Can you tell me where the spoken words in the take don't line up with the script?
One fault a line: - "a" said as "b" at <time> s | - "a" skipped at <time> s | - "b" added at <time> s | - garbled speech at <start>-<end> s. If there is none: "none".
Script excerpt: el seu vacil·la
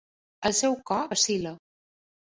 - "cor" added at 0.9 s